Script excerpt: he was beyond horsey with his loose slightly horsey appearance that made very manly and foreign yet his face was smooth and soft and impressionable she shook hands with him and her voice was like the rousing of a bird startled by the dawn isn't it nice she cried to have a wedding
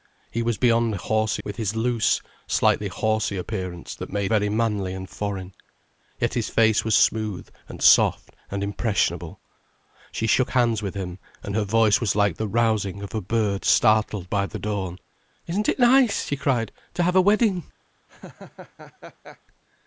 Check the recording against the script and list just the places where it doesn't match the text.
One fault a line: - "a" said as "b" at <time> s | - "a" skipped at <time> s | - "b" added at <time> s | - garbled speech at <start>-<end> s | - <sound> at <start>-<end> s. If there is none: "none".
- laugh at 18.1-19.4 s